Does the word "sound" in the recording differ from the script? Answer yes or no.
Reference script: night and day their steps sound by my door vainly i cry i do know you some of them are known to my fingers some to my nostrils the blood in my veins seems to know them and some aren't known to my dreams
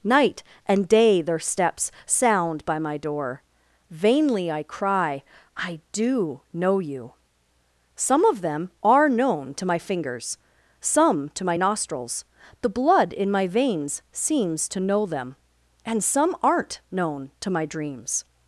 no